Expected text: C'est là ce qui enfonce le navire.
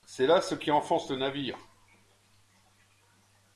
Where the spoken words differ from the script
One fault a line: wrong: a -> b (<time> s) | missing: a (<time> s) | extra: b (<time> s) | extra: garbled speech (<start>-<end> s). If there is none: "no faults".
no faults